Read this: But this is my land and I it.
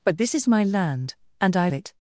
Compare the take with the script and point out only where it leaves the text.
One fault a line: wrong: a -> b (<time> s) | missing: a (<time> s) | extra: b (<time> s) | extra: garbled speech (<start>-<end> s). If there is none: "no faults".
no faults